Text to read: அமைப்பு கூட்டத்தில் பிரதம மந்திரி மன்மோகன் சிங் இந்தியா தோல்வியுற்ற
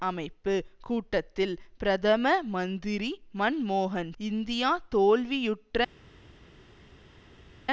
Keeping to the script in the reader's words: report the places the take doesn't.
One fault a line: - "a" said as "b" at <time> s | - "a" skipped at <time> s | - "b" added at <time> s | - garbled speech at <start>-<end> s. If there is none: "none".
- "சிங்" skipped at 4.1 s